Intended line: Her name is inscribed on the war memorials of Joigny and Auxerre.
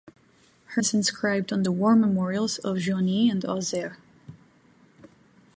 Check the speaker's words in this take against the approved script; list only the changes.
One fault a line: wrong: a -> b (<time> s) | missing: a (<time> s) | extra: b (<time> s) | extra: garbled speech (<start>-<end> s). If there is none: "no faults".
missing: name (0.8 s)